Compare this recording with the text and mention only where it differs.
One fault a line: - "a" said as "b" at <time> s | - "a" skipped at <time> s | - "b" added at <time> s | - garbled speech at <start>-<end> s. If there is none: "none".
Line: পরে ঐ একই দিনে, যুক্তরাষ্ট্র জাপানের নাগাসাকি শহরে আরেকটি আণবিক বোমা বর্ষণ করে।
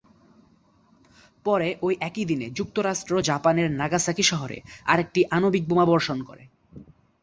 none